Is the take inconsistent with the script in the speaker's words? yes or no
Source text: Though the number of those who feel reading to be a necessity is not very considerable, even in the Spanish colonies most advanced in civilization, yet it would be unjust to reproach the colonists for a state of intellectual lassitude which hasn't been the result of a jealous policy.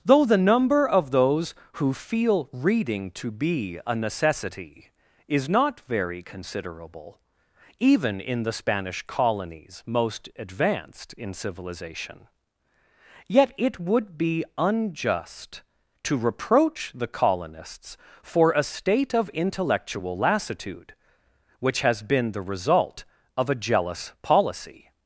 yes